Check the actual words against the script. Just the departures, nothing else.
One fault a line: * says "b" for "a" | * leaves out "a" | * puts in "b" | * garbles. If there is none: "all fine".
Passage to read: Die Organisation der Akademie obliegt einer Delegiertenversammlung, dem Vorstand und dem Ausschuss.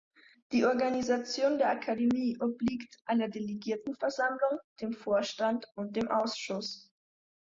all fine